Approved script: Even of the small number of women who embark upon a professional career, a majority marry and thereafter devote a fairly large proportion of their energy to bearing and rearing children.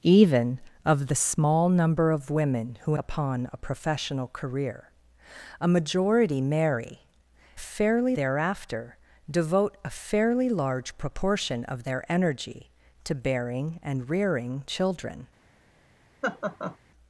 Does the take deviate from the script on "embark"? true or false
true